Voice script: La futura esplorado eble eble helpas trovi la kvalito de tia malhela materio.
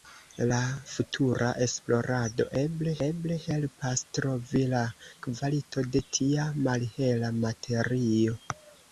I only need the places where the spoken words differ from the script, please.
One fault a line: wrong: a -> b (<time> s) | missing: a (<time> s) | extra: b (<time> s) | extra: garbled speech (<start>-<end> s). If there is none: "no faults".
no faults